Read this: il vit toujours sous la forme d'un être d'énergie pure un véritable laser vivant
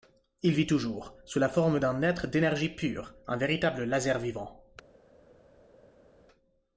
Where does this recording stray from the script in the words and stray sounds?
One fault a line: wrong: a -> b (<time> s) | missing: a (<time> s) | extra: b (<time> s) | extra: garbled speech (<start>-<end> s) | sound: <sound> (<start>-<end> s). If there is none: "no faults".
no faults